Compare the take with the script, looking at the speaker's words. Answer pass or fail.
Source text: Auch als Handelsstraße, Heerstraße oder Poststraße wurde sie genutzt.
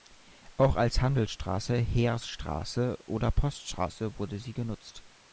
pass